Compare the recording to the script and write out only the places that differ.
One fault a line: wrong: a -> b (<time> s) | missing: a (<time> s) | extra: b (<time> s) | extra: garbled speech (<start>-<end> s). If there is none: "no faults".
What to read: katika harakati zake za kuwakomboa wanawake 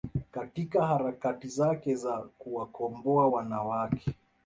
no faults